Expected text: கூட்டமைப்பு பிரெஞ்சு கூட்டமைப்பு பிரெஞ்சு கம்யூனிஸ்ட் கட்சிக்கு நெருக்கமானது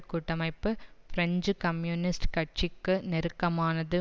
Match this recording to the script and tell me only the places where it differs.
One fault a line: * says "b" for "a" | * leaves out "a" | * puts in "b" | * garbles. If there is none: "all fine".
* leaves out "கூட்டமைப்பு பிரெஞ்சு"